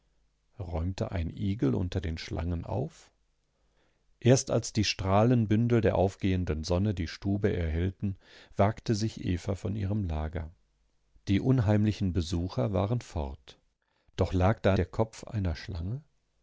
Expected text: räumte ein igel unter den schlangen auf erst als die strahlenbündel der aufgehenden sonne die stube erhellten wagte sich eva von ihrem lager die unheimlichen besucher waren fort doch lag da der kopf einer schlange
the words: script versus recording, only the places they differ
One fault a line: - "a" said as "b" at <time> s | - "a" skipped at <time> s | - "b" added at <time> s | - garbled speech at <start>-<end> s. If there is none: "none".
none